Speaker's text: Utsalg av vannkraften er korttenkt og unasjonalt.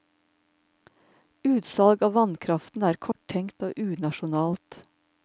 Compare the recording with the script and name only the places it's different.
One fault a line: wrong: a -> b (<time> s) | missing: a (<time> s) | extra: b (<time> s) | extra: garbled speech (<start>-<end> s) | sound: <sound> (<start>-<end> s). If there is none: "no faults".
sound: dropout (3.1-3.2 s)